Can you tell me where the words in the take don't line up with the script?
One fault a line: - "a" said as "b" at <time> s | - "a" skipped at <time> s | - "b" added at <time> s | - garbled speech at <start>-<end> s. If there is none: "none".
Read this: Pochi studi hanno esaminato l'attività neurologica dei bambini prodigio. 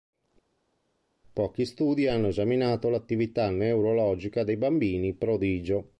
none